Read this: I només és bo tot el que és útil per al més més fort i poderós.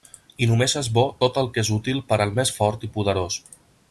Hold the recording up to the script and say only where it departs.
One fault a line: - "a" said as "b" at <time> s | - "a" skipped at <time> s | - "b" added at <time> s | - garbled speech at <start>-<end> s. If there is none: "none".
- "més" skipped at 2.5 s